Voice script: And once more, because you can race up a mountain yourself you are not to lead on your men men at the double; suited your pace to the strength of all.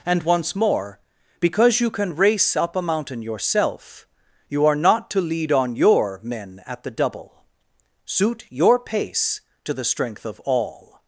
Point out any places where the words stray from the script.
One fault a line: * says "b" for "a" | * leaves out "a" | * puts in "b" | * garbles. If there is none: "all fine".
* leaves out "men"
* says "suit" for "suited"